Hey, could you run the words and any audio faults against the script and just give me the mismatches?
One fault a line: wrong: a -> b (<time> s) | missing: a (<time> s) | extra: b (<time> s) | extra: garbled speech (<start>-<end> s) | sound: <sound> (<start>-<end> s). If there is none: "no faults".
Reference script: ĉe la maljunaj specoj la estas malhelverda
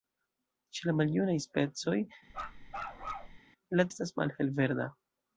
sound: bark (2.3-3.4 s)